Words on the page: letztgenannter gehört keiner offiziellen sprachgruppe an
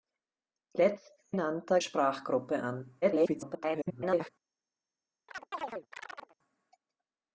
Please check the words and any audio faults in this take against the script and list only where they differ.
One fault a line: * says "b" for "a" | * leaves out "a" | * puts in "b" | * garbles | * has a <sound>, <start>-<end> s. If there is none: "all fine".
* leaves out "gehört keiner offiziellen"
* garbles
* has a chirp, 5.3-6.4 s